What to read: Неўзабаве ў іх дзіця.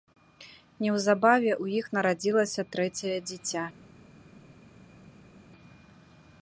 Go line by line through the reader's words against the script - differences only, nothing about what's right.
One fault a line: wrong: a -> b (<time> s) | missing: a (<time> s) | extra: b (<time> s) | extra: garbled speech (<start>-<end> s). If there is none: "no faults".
extra: нарадзілася трэцяе (2.0 s)